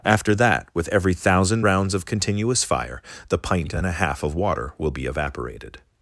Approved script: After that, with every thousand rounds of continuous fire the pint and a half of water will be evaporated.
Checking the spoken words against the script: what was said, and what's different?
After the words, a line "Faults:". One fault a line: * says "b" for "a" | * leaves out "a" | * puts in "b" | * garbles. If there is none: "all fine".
After that, with every thousand rounds of continuous fire the pint and a half of water will be evaporated.
Faults:
all fine